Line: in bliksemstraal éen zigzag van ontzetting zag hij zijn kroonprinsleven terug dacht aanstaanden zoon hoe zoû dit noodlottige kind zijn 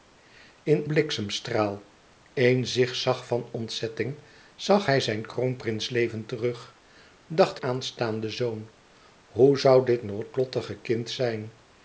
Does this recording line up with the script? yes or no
yes